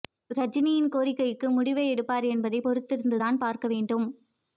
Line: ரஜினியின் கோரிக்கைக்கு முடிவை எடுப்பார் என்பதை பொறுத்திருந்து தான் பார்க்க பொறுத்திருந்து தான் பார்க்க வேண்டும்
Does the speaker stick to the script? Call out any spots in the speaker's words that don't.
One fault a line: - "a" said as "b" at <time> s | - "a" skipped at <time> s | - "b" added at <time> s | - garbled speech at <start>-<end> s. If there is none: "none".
- "பொறுத்திருந்து தான் பார்க்க" skipped at 3.7 s